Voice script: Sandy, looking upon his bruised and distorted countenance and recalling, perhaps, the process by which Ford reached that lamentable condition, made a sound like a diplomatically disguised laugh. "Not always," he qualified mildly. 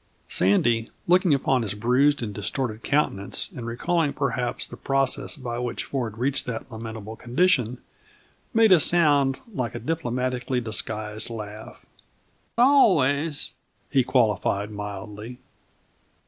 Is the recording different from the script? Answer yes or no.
yes